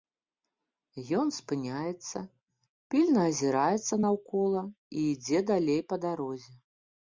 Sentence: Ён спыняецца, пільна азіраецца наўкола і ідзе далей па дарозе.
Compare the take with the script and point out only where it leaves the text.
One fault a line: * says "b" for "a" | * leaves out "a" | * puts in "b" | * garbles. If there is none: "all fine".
all fine